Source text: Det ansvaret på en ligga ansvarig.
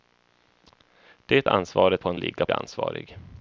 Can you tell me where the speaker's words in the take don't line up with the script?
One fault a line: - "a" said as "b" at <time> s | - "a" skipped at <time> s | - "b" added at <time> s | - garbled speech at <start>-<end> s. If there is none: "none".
none